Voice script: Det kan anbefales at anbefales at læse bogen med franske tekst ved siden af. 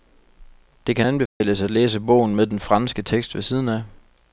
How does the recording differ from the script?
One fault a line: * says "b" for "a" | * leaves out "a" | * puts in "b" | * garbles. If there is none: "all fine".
* leaves out "anbefales at"
* puts in "den"